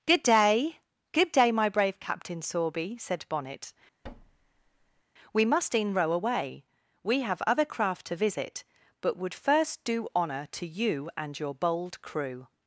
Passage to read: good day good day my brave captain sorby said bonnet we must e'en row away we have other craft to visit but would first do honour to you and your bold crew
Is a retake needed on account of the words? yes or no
no